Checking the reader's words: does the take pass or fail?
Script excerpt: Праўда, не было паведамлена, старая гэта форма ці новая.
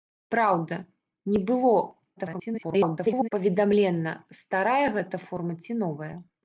fail